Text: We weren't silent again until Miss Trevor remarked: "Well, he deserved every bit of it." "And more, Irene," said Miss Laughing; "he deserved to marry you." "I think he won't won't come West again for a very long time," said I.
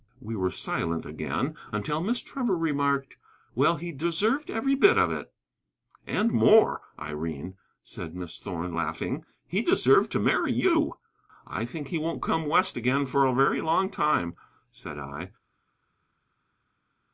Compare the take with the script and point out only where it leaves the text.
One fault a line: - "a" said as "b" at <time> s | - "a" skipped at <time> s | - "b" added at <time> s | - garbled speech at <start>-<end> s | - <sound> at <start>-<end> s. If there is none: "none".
- "weren't" said as "were" at 0.3 s
- "Thorn" added at 8.4 s
- "won't" skipped at 12.2 s